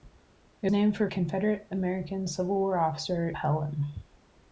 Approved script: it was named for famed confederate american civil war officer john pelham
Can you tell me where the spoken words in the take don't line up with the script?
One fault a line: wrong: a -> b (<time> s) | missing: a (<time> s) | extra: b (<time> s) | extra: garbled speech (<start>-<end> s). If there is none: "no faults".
missing: was (0.7 s)
missing: famed (1.1 s)
missing: john (3.3 s)